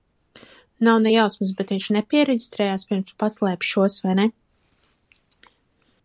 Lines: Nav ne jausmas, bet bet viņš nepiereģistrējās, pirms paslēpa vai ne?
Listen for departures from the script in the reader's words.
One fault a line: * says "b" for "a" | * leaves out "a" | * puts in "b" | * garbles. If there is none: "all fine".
* leaves out "bet"
* puts in "šos"